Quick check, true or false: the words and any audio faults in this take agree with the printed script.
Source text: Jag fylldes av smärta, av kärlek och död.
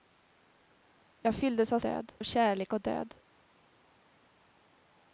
false